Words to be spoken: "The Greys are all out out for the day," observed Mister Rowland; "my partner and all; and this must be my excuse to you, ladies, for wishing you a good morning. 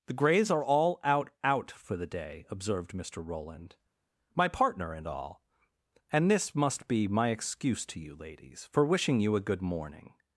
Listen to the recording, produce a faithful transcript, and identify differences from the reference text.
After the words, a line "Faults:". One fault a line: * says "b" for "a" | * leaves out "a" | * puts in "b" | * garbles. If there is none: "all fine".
"The Greys are all out out for the day," observed Mister Rowland; "my partner and all; and this must be my excuse to you, ladies, for wishing you a good morning.
Faults:
all fine